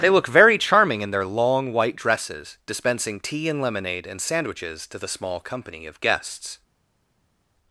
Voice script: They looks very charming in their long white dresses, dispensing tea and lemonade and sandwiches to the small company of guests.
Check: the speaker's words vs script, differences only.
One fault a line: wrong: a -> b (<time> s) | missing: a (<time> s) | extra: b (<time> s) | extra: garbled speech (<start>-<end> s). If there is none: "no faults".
wrong: looks -> look (0.1 s)